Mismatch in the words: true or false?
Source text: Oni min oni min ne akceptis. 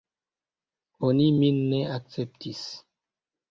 true